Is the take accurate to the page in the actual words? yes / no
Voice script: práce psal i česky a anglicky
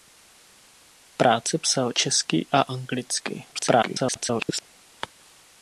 no